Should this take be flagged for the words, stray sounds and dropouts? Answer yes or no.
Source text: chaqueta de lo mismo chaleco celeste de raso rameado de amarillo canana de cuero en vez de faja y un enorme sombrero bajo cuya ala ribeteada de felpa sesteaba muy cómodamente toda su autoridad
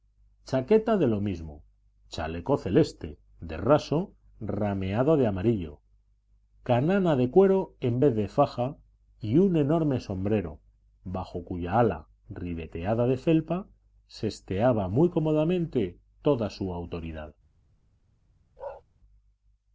yes